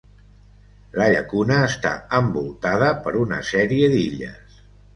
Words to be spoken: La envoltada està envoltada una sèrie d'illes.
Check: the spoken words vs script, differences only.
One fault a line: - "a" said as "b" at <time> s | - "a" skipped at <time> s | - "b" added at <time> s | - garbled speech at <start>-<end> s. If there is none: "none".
- "envoltada" said as "llacuna" at 1.1 s
- "per" added at 3.1 s